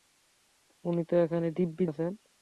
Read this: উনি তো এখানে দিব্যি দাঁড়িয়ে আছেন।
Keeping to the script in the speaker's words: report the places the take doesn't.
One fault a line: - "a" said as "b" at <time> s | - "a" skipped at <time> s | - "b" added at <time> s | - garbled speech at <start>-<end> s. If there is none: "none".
- "দাঁড়িয়ে" skipped at 1.8 s